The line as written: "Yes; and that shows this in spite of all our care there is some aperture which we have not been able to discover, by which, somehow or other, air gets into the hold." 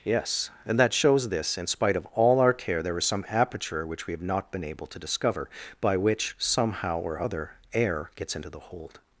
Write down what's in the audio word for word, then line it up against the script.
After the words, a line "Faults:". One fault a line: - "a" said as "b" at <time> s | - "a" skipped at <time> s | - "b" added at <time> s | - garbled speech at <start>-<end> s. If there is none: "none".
"Yes; and that shows this in spite of all our care there is some aperture which we have not been able to discover, by which, somehow or other, air gets into the hold."
Faults:
none